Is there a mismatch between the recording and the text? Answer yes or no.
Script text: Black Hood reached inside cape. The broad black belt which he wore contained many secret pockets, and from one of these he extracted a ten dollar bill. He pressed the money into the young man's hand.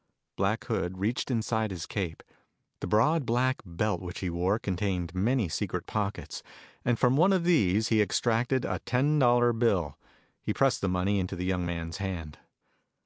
yes